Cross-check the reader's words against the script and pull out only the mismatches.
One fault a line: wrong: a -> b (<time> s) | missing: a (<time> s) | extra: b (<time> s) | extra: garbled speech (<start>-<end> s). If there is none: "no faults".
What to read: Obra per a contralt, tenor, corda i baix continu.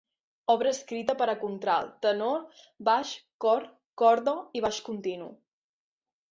extra: escrita (0.8 s)
extra: baix cor (2.9 s)